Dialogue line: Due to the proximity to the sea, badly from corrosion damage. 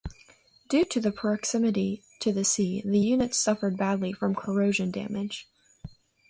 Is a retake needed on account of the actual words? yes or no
yes